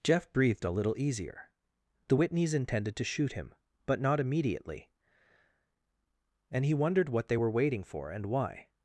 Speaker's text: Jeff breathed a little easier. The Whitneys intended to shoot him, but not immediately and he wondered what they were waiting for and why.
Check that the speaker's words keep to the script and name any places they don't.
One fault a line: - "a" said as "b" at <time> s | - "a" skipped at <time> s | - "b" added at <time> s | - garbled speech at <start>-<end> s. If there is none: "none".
none